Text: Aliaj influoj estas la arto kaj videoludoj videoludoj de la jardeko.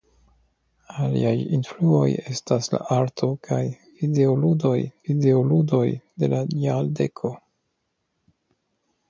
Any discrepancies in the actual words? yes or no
no